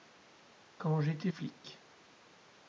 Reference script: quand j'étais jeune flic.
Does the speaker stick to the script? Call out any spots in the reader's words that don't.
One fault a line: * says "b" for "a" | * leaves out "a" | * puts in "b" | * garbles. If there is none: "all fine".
* leaves out "jeune"